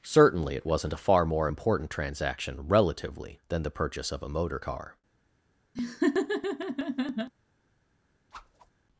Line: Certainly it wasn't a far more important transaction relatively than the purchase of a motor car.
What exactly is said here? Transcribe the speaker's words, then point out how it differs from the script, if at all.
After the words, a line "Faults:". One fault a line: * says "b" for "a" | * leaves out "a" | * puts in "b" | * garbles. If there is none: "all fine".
Certainly it wasn't a far more important transaction relatively than the purchase of a motor car.
Faults:
all fine